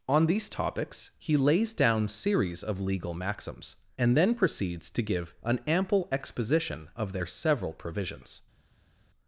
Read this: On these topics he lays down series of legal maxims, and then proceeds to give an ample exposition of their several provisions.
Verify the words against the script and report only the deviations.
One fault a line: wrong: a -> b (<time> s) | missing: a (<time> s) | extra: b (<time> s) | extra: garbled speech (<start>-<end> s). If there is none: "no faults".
no faults